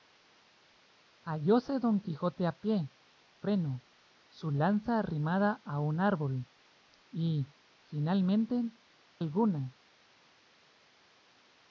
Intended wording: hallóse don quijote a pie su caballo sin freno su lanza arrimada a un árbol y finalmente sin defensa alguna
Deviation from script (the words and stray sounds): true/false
true